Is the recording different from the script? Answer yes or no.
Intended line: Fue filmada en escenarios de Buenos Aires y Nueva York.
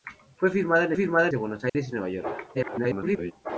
yes